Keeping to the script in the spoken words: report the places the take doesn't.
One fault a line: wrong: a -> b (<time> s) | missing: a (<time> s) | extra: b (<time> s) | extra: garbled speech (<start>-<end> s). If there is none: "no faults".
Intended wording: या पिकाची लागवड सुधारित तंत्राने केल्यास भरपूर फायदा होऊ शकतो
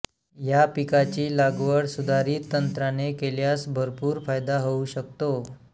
no faults